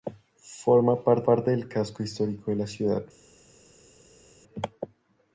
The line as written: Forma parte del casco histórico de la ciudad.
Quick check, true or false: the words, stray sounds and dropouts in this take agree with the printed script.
false